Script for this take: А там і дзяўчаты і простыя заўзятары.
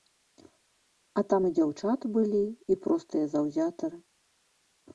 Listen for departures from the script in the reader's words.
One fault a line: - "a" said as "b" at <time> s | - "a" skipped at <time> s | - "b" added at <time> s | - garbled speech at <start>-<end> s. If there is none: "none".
- "былі" added at 2.2 s